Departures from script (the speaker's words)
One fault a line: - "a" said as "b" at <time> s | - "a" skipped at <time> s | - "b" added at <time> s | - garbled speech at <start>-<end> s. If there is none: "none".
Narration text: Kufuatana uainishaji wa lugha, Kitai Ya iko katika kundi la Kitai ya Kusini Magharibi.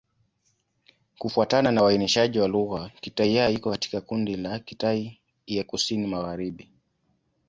- "na" added at 1.7 s